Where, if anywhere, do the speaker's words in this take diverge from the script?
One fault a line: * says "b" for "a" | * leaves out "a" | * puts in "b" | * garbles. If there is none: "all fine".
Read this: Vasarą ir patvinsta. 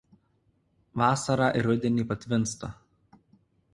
* puts in "rudenį"